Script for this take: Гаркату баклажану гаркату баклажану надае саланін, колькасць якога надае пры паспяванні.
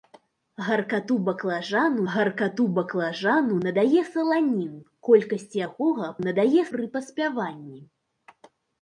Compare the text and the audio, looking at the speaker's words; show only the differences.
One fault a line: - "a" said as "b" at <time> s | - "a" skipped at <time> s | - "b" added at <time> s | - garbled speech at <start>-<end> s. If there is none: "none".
none